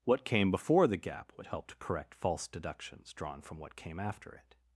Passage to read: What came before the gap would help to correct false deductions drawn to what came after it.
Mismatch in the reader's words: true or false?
true